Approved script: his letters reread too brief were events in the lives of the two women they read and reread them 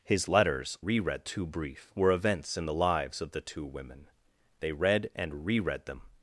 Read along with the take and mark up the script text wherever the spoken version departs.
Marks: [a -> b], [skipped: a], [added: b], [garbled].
his letters reread too brief were events in the lives of the two women they read and reread them